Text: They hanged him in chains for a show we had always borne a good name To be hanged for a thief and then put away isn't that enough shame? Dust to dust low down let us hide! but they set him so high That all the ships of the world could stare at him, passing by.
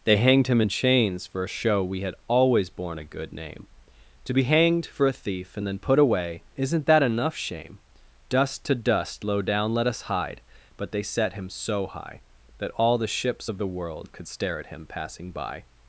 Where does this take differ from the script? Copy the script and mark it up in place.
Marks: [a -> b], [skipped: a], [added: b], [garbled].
They hanged him in chains for a show we had always borne a good name To be hanged for a thief and then put away isn't that enough shame? Dust to dust low down let us hide! but they set him so high That all the ships of the world could stare at him, passing by.